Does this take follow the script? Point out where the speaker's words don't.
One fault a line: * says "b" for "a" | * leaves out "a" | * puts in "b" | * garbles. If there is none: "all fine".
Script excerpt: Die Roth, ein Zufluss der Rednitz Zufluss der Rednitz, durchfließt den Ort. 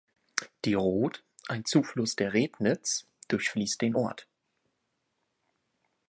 * leaves out "Zufluss der Rednitz"